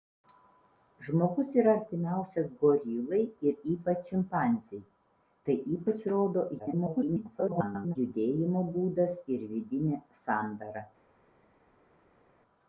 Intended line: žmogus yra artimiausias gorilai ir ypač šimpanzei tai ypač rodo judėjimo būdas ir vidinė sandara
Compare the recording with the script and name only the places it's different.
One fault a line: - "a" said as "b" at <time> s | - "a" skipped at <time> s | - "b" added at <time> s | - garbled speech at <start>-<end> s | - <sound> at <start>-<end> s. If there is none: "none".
- garbled speech at 6.6-8.0 s